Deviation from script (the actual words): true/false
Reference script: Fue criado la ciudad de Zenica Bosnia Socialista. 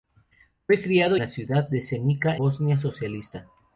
false